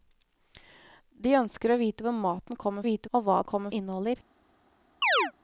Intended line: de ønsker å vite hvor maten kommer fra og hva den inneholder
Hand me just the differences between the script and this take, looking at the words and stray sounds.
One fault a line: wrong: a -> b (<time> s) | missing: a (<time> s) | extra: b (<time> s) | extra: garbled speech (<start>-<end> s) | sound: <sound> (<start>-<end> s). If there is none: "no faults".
wrong: fra -> vite (2.8 s)
wrong: den -> kommer (3.5 s)
sound: chirp (5.0-5.3 s)